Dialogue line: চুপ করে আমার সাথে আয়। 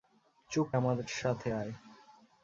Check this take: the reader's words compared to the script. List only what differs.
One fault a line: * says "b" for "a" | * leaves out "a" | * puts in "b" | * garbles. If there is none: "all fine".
* leaves out "করে"